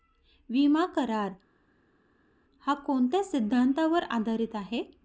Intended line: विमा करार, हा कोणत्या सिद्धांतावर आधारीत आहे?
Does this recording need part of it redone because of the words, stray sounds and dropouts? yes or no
no